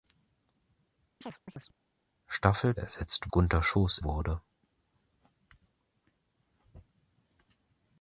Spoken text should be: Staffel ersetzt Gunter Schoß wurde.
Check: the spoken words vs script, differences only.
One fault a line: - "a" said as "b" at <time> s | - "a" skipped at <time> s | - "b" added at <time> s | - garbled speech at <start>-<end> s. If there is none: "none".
none